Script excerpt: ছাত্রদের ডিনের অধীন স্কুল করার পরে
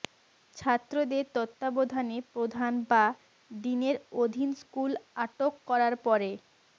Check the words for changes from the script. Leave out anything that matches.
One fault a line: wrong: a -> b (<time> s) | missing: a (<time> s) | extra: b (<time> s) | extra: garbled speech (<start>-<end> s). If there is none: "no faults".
extra: তত্ত্বাবধানে প্রধান বা (1.3 s)
extra: আটক (5.2 s)